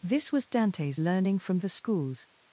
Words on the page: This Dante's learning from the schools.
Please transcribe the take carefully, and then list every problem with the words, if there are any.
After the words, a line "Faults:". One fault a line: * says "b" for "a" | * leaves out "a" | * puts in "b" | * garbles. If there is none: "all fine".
This was Dante's learning from the schools.
Faults:
* puts in "was"